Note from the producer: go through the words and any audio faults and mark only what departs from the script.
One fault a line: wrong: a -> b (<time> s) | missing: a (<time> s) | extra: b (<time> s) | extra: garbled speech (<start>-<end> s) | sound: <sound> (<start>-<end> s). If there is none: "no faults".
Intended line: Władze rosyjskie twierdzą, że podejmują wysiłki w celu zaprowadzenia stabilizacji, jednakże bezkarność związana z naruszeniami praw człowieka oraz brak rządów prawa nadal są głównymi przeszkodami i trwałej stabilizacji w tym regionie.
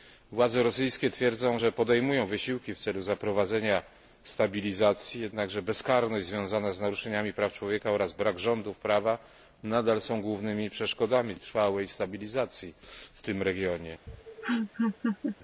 sound: laugh (14.1-15.4 s)